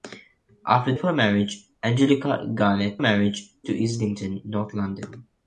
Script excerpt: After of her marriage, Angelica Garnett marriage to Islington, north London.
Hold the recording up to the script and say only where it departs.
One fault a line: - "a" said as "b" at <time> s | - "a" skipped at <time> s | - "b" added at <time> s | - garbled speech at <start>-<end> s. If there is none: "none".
none